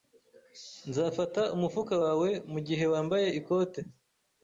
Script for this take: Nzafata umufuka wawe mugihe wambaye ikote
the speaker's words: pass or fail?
pass